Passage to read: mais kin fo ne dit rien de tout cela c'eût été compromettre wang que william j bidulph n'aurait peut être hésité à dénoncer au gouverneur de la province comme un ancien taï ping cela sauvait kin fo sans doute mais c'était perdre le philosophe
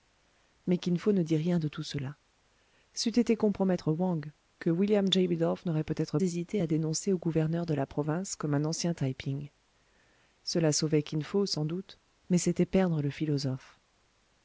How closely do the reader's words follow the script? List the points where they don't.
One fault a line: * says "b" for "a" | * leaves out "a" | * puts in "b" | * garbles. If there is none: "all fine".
all fine